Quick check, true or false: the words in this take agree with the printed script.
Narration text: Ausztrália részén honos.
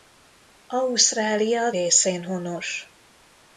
true